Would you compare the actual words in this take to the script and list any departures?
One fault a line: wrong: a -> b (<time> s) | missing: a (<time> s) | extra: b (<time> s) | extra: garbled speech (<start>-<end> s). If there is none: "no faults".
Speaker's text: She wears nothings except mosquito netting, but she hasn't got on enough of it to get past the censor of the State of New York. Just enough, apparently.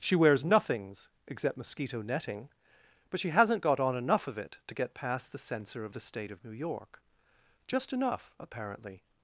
no faults